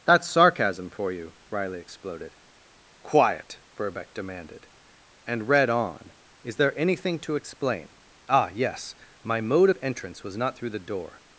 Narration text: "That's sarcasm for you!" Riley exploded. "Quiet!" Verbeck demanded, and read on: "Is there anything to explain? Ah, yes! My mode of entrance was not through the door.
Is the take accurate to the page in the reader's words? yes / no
yes